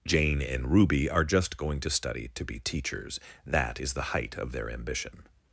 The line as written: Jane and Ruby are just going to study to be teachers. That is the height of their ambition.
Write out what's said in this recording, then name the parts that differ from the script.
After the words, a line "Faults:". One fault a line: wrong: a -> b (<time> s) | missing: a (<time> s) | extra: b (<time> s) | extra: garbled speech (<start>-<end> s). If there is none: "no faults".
Jane and Ruby are just going to study to be teachers. That is the height of their ambition.
Faults:
no faults